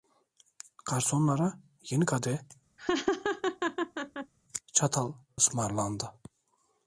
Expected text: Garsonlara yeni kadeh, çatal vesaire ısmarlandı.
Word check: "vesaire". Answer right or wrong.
wrong